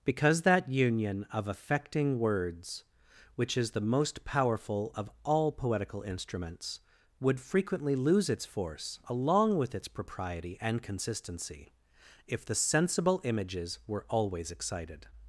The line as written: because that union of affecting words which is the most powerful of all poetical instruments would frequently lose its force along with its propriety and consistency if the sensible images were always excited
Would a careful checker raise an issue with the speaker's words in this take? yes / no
no